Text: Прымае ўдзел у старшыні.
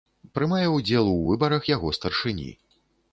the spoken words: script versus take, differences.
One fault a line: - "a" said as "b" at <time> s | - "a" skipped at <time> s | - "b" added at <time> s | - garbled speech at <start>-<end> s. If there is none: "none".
- "выбарах яго" added at 1.3 s